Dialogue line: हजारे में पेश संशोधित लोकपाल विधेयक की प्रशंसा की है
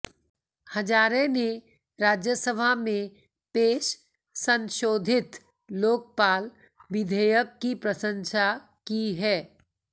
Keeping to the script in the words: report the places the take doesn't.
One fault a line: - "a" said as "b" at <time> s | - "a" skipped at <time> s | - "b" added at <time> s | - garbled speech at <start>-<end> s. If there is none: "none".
- "ने राज्यसभा" added at 1.3 s